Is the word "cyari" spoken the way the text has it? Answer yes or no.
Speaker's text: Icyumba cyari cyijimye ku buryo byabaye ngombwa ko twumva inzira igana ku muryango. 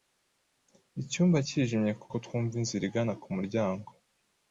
no